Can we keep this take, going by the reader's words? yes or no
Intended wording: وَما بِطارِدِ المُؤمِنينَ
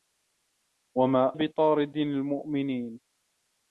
yes